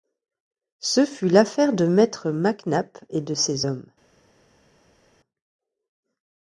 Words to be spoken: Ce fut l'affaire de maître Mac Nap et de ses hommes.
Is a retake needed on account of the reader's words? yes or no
no